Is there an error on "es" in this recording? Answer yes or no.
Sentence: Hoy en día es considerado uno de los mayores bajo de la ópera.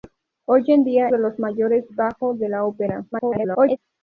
yes